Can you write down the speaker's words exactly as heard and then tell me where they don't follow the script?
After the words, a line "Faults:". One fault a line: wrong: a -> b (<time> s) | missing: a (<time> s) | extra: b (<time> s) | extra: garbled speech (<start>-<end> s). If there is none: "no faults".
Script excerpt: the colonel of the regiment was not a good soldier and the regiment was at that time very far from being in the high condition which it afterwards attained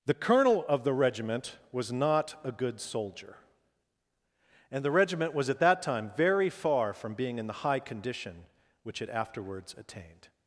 the colonel of the regiment was not a good soldier and the regiment was at that time very far from being in the high condition which it afterwards attained
Faults:
no faults